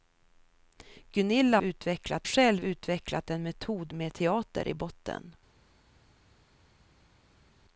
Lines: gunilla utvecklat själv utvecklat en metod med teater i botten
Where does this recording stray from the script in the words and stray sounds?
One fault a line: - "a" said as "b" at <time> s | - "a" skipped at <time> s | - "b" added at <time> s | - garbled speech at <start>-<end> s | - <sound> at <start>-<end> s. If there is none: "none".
none